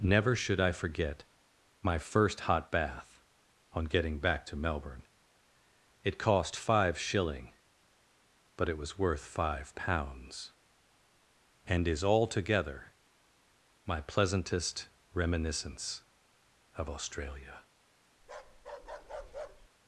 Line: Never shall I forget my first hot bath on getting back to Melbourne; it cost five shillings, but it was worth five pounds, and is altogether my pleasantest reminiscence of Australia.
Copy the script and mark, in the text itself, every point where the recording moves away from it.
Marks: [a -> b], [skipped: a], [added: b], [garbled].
Never [shall -> should] I forget my first hot bath on getting back to Melbourne; it cost five [shillings, -> shilling] but it was worth five pounds, and is altogether my pleasantest reminiscence of Australia.